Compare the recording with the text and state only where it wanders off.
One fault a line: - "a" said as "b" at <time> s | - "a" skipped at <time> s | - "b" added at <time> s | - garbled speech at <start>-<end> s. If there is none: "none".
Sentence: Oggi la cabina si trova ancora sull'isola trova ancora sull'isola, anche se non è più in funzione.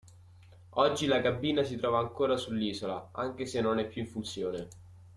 - "trova ancora sull'isola" skipped at 3.1 s